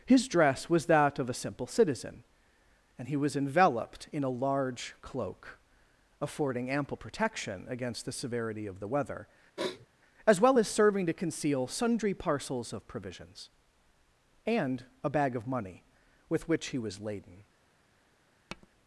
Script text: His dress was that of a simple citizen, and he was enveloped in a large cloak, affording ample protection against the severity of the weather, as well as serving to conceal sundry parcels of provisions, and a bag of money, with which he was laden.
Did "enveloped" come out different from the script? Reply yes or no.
no